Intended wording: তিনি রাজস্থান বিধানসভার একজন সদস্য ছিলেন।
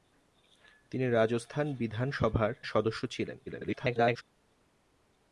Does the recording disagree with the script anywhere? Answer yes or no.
yes